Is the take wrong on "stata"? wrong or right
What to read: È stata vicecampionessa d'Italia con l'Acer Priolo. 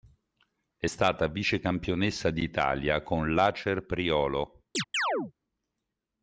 right